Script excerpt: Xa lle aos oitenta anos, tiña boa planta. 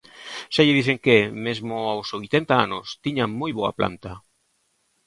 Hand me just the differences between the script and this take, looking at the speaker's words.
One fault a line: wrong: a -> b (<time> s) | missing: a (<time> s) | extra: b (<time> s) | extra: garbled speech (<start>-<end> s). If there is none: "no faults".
extra: dixen que mesmo (0.8 s)
extra: moi (3.4 s)